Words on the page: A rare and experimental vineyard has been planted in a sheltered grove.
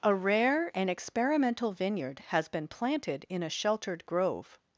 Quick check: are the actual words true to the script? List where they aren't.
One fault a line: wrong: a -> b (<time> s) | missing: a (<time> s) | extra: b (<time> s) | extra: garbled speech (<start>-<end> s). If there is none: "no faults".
no faults